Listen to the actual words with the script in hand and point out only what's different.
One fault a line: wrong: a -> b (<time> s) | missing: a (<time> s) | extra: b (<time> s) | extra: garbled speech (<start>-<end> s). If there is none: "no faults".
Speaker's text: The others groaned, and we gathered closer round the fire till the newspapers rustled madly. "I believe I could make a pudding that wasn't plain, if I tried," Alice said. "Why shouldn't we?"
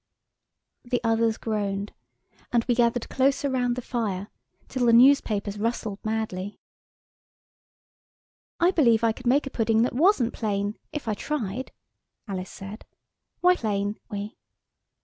wrong: shouldn't -> plain (13.5 s)